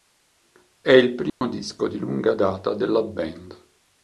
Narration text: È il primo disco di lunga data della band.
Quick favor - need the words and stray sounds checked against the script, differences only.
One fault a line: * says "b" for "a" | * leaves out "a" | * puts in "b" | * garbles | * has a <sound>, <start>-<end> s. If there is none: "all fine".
* has a dropout, 1.3-1.4 s